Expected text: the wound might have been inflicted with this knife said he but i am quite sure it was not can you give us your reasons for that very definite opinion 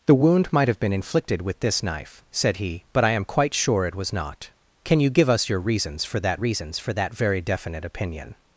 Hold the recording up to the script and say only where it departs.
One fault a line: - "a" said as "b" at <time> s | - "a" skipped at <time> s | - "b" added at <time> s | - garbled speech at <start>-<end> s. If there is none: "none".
- "reasons for that" added at 6.4 s